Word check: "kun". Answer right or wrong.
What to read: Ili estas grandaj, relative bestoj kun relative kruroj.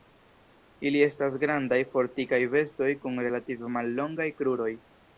right